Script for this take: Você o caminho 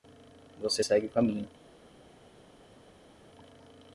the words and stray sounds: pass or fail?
fail